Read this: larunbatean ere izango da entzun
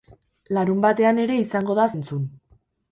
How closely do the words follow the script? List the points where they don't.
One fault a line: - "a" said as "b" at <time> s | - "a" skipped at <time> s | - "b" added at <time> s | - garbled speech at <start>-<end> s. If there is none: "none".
none